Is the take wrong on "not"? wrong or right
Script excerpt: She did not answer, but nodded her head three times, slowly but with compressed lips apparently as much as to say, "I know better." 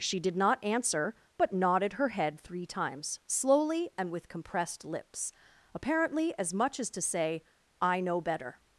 right